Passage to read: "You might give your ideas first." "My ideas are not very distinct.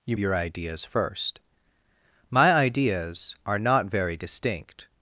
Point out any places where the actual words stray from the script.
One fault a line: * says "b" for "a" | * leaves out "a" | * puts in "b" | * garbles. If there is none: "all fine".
* leaves out "might give"